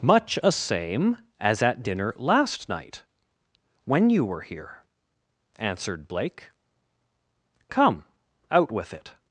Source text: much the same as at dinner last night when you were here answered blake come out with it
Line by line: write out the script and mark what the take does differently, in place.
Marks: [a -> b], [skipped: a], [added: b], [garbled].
much [the -> a] same as at dinner last night when you were here answered blake come out with it